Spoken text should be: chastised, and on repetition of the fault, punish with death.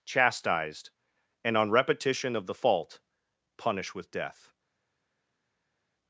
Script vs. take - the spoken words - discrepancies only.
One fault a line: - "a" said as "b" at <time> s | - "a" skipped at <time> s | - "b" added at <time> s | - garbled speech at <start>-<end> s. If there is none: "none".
none